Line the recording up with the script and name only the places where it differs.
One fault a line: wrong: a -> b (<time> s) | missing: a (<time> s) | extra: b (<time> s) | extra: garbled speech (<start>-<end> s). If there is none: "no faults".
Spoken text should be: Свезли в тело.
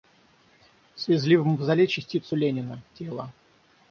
extra: мавзолей частицу Ленина (1.4 s)